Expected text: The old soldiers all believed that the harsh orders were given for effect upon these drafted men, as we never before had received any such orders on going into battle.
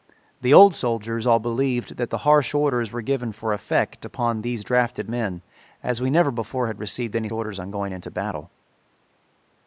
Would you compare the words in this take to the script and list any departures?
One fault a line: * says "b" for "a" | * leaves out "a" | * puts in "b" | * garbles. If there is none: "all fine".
* leaves out "such"